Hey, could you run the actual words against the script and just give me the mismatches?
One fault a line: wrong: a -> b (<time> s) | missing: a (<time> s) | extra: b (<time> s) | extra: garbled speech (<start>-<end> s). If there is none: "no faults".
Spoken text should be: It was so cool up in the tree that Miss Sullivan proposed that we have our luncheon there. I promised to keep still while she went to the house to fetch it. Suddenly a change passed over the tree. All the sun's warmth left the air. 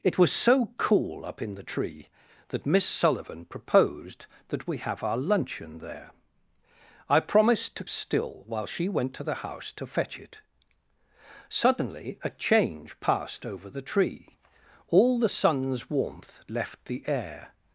missing: keep (7.8 s)